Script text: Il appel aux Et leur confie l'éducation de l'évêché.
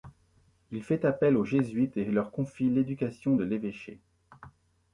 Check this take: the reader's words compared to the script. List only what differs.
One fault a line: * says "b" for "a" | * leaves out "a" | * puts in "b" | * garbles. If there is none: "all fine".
* puts in "fait"
* puts in "Jésuites"